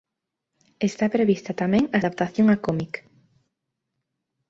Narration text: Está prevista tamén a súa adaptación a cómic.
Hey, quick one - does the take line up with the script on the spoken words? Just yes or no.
no